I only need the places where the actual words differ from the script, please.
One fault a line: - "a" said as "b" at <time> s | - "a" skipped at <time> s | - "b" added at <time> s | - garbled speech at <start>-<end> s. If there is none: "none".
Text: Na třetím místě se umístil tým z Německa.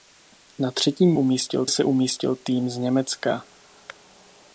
- "místě" said as "umístil" at 1.1 s